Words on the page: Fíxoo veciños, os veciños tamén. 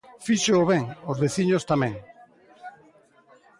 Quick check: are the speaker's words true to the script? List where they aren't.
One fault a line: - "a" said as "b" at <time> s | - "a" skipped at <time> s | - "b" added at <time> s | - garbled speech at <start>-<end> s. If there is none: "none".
- "veciños" said as "ben" at 0.7 s